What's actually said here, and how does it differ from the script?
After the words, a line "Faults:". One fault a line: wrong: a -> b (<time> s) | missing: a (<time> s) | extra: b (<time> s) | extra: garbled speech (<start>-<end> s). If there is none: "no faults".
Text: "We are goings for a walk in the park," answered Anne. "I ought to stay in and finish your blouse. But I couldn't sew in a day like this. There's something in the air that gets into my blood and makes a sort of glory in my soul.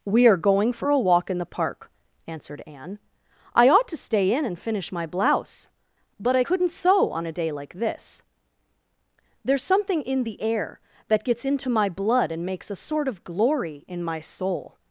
"We are going for a walk in the park," answered Anne. "I ought to stay in and finish my blouse. But I couldn't sew on a day like this. There's something in the air that gets into my blood and makes a sort of glory in my soul.
Faults:
wrong: goings -> going (0.4 s)
wrong: your -> my (4.9 s)
wrong: in -> on (7.1 s)